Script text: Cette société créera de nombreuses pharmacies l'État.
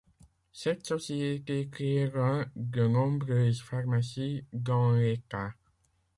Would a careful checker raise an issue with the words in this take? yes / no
yes